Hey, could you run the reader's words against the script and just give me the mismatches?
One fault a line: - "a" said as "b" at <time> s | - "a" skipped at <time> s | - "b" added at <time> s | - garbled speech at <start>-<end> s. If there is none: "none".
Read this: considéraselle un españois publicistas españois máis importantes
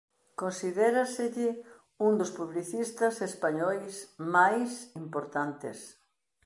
- "españois" said as "dos" at 2.2 s